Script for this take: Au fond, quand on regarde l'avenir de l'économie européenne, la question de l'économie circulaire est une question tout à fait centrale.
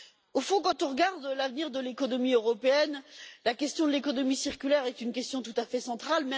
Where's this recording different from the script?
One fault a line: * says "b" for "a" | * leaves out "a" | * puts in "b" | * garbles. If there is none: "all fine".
all fine